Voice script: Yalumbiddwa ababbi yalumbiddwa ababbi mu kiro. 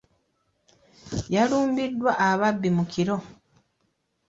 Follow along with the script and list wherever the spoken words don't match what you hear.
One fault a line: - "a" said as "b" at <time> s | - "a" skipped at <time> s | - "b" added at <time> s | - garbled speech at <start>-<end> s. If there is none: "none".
- "yalumbiddwa ababbi" skipped at 2.7 s